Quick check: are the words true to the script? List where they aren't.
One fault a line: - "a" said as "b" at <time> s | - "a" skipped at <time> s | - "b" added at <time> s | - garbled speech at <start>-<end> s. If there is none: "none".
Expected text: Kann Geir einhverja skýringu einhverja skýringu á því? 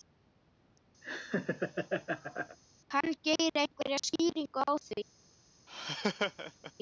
- "einhverja skýringu" skipped at 4.6 s